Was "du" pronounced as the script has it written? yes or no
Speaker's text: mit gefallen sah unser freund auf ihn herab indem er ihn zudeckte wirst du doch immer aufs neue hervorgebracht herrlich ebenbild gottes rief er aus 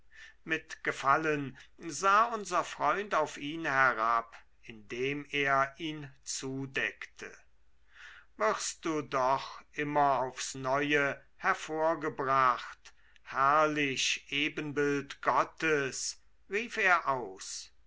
yes